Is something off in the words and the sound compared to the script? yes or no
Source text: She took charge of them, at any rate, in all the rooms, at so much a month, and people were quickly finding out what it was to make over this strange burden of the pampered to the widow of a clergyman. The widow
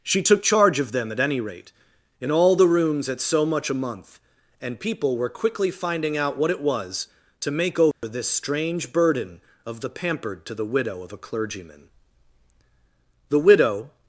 yes